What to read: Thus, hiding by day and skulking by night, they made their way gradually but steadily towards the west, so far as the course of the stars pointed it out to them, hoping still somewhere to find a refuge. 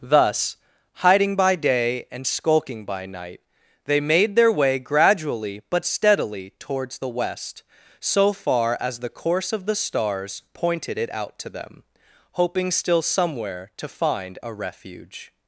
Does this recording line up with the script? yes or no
yes